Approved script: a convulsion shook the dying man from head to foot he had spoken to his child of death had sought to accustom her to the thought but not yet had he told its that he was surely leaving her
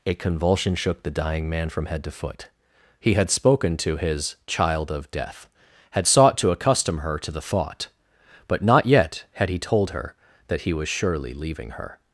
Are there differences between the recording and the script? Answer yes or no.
yes